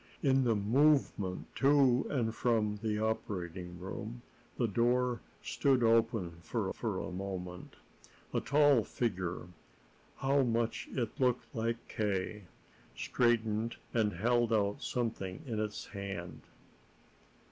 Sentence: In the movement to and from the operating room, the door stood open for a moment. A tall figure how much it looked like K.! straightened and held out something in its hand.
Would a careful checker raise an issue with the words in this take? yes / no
yes